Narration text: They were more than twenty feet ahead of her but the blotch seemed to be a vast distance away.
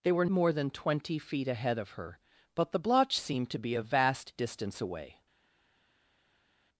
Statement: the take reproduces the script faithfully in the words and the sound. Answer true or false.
true